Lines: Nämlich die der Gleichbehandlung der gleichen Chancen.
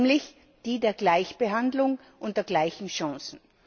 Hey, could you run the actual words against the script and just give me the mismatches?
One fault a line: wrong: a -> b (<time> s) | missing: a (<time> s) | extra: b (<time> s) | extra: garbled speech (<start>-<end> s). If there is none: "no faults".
extra: und (2.2 s)